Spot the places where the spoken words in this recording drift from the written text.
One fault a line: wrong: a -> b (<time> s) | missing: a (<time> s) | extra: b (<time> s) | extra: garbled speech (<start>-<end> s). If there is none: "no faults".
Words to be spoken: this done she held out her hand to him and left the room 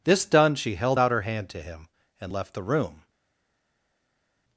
no faults